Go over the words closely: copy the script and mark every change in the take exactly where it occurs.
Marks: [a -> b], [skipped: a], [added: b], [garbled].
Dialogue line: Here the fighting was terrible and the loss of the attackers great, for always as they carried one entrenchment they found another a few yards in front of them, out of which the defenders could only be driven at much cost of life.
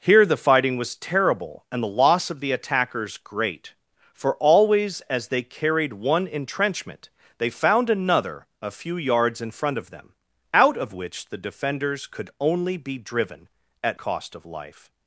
Here the fighting was terrible and the loss of the attackers great, for always as they carried one entrenchment they found another a few yards in front of them, out of which the defenders could only be driven at [skipped: much] cost of life.